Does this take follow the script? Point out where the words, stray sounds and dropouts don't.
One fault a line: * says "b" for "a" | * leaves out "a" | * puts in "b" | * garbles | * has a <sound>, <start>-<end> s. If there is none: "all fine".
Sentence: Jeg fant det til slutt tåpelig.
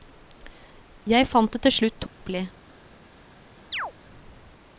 * has a dropout, 2.1-2.2 s
* has a chirp, 3.7-3.9 s